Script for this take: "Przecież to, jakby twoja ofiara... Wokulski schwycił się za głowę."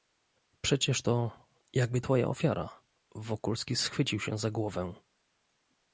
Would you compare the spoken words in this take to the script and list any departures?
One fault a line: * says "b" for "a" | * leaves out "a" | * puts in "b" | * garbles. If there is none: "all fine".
all fine